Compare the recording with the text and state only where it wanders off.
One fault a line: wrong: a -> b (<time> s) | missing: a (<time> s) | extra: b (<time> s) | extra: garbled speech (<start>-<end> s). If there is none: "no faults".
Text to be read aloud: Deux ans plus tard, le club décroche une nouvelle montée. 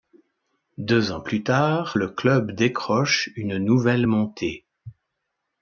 no faults